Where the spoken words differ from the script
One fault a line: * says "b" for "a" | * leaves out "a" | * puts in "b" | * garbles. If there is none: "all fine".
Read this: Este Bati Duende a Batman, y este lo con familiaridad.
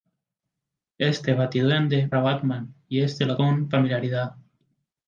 all fine